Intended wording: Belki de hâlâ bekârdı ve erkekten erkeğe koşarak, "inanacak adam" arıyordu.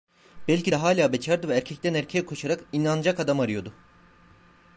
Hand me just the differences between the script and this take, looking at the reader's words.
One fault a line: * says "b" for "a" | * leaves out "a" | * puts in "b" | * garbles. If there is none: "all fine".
all fine